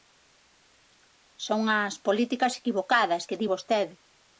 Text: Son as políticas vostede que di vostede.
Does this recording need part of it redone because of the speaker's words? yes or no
yes